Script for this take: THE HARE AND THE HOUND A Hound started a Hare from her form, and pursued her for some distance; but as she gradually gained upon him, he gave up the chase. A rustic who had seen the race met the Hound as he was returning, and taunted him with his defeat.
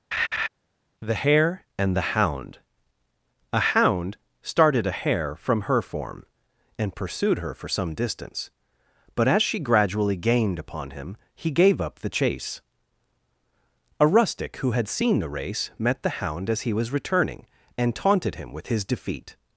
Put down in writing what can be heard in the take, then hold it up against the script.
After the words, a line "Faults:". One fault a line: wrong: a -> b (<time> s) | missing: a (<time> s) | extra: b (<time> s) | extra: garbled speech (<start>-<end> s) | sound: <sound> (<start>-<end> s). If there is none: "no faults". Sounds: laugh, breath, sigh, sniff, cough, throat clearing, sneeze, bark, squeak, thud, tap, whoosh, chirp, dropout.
THE HARE AND THE HOUND A Hound started a Hare from her form, and pursued her for some distance; but as she gradually gained upon him, he gave up the chase. A rustic who had seen the race met the Hound as he was returning, and taunted him with his defeat.
Faults:
sound: laugh (0.1-0.5 s)